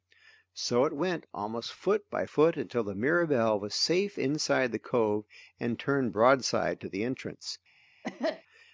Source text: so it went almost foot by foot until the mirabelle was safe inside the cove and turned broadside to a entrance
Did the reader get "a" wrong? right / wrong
wrong